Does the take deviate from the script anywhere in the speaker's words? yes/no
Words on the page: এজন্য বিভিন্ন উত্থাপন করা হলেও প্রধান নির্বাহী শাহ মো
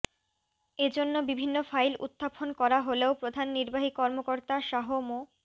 yes